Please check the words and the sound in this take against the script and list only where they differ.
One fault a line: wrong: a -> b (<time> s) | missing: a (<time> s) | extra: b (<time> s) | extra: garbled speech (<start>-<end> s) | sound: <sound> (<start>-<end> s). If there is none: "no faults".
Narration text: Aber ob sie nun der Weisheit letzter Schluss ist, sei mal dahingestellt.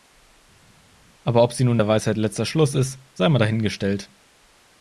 no faults